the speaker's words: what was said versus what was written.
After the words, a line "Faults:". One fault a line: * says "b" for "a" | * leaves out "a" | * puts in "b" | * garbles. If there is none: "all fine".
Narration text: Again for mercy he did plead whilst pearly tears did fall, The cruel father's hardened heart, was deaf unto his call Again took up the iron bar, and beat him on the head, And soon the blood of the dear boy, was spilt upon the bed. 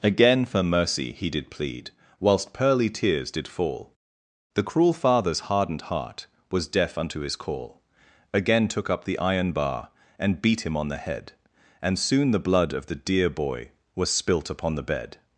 Again for mercy he did plead whilst pearly tears did fall, The cruel father's hardened heart, was deaf unto his call Again took up the iron bar, and beat him on the head, And soon the blood of the dear boy, was spilt upon the bed.
Faults:
all fine